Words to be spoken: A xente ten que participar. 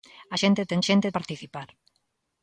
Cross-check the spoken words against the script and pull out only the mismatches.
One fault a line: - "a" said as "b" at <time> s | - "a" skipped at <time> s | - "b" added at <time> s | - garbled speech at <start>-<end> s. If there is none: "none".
- "que" said as "xente" at 0.9 s